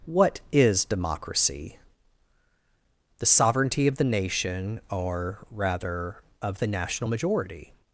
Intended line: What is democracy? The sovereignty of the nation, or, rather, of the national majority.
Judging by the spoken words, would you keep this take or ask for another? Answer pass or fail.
pass